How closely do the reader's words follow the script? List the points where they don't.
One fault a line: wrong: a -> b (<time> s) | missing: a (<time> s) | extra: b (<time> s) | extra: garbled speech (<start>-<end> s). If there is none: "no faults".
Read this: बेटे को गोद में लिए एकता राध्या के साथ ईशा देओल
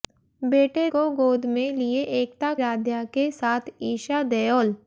no faults